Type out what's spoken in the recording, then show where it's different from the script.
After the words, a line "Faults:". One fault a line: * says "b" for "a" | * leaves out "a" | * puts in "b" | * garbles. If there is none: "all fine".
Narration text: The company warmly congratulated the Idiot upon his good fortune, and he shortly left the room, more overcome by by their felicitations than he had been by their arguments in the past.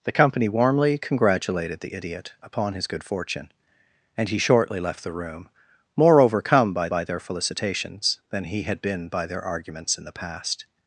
The company warmly congratulated the Idiot upon his good fortune, and he shortly left the room, more overcome by by their felicitations than he had been by their arguments in the past.
Faults:
all fine